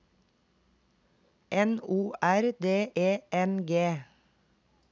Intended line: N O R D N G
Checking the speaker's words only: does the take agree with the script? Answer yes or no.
no